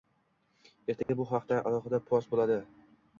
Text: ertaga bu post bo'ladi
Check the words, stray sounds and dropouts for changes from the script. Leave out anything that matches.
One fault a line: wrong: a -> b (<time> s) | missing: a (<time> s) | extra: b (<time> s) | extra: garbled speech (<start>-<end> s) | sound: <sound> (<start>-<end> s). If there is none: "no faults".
sound: dropout (1.0-1.1 s)
extra: haqda alohida (1.3 s)